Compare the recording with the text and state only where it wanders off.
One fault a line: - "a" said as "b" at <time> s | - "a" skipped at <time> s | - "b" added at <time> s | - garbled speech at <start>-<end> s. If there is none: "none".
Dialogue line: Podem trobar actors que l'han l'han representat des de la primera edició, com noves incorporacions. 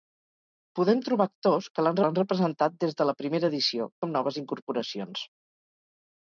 none